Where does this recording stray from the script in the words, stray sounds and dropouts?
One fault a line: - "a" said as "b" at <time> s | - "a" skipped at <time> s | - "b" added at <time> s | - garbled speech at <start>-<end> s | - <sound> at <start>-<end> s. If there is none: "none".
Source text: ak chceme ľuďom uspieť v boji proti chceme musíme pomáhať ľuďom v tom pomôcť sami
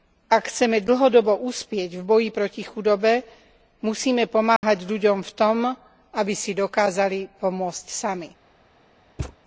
- "ľuďom" said as "dlhodobo" at 0.8 s
- "chceme" said as "chudobe" at 2.6 s
- dropout at 4.6-4.6 s
- "aby si dokázali" added at 6.1 s
- thud at 9.2-9.4 s